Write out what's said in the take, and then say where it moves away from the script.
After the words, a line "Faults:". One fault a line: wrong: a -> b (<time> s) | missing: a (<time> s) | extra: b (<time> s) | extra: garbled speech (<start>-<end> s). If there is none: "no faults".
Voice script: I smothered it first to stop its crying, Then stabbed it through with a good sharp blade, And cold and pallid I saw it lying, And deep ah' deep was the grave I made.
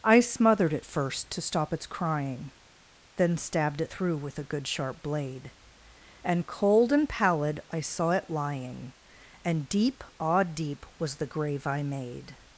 I smothered it first to stop its crying, Then stabbed it through with a good sharp blade, And cold and pallid I saw it lying, And deep ah' deep was the grave I made.
Faults:
no faults